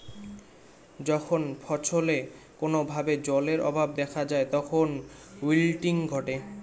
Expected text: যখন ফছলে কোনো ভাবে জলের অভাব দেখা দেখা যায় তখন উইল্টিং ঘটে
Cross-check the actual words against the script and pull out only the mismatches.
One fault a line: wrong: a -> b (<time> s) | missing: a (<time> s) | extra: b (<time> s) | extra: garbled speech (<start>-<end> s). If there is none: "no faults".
missing: দেখা (4.2 s)